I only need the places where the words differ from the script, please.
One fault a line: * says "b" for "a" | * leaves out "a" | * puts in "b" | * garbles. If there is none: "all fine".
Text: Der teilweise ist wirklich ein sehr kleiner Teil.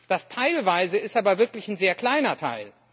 * says "Das" for "Der"
* puts in "aber"